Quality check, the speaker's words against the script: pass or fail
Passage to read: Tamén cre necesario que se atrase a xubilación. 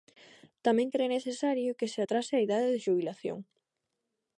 fail